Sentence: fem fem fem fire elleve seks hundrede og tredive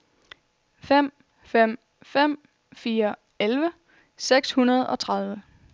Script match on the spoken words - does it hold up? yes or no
yes